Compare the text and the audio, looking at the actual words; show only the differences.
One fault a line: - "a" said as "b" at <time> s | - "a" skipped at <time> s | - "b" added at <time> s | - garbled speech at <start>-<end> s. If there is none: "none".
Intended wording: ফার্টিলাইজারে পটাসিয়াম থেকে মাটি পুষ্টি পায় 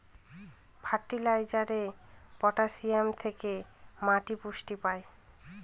none